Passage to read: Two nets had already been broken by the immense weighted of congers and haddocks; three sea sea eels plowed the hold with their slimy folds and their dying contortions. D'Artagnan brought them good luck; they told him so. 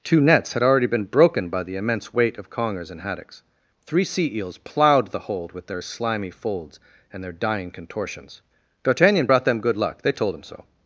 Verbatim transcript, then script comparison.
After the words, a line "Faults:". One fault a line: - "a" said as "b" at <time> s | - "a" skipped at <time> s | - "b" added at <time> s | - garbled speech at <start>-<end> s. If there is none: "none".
Two nets had already been broken by the immense weight of congers and haddocks; three sea eels plowed the hold with their slimy folds and their dying contortions. D'Artagnan brought them good luck; they told him so.
Faults:
- "weighted" said as "weight" at 2.1 s
- "sea" skipped at 4.3 s